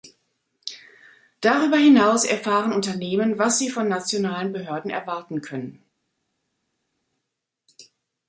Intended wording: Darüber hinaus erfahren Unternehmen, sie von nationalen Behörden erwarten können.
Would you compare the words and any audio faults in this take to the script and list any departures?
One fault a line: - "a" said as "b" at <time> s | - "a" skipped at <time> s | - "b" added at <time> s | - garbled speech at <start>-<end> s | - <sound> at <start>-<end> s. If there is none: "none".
- "was" added at 3.4 s